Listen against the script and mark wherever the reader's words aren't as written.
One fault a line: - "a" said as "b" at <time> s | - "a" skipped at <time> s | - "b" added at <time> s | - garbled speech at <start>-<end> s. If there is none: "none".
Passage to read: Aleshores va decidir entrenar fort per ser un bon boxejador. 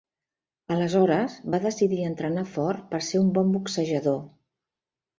none